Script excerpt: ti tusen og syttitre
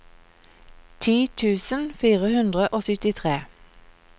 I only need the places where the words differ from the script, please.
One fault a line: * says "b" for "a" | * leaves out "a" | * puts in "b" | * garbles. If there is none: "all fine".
* puts in "fire hundre"